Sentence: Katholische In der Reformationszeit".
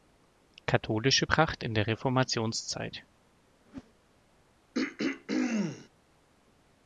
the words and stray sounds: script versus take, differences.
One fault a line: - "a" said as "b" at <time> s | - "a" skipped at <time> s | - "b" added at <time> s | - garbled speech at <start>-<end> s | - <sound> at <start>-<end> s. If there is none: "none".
- "Pracht" added at 1.2 s
- whoosh at 3.7-3.9 s
- throat clearing at 4.7-5.9 s